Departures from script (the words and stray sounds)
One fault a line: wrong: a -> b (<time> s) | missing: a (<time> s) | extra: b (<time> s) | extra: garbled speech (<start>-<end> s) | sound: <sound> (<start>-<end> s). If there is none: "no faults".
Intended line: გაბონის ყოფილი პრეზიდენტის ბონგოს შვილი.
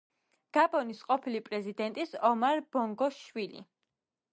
extra: ომარ (2.3 s)